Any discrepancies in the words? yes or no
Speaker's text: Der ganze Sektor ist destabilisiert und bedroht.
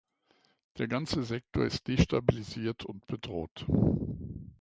no